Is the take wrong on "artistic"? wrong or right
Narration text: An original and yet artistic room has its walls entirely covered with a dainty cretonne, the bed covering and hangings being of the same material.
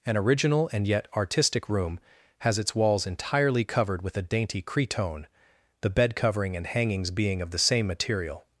right